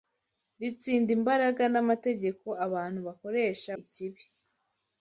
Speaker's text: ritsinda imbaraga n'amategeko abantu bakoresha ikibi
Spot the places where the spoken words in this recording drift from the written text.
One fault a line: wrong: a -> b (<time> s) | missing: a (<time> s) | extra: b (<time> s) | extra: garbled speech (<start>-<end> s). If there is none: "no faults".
no faults